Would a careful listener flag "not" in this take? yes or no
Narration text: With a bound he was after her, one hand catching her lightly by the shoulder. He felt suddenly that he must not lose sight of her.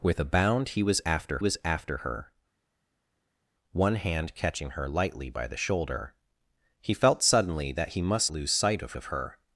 yes